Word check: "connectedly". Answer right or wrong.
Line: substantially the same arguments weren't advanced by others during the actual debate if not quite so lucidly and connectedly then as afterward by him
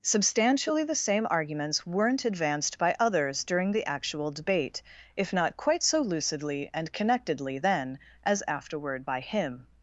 right